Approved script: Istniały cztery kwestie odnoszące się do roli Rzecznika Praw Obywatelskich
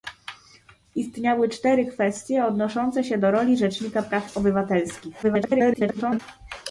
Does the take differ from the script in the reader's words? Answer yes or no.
yes